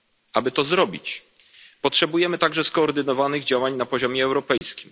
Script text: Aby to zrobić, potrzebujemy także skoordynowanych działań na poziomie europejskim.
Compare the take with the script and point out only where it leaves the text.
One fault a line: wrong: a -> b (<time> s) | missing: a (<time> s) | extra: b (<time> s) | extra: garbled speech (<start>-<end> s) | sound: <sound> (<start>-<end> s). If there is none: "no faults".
sound: dropout (4.6-4.6 s)